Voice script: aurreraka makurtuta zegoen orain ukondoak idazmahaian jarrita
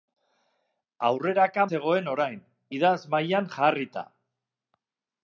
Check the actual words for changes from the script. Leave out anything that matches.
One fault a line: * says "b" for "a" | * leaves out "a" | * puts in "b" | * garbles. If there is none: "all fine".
* leaves out "makurtuta"
* leaves out "ukondoak"